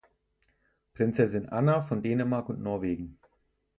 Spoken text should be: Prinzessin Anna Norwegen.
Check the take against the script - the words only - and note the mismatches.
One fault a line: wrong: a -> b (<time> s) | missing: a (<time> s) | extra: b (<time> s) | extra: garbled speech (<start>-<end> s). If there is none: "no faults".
extra: von Dänemark und (1.8 s)